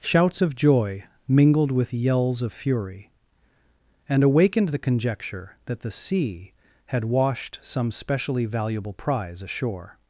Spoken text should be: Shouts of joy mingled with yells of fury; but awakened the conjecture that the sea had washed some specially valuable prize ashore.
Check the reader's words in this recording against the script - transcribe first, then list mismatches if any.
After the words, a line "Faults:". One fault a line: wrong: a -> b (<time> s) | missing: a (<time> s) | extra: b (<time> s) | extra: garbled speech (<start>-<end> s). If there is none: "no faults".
Shouts of joy mingled with yells of fury; and awakened the conjecture that the sea had washed some specially valuable prize ashore.
Faults:
wrong: but -> and (4.1 s)